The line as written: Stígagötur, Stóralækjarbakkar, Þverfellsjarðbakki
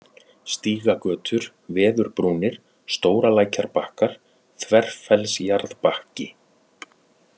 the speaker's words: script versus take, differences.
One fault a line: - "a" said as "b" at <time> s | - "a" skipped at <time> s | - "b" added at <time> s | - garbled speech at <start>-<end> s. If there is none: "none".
- "Veðurbrúnir" added at 1.8 s